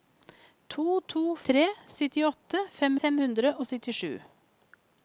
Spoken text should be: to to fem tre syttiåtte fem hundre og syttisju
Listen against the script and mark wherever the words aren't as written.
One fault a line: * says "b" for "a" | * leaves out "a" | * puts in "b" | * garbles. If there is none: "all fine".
* leaves out "fem"
* puts in "fem"